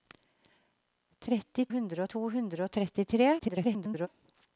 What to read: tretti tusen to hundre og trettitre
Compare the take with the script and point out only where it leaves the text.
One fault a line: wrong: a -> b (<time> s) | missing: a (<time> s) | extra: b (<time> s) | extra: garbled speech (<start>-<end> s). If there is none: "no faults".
wrong: tusen -> hundre (1.8 s)
extra: garbled speech (3.4-4.1 s)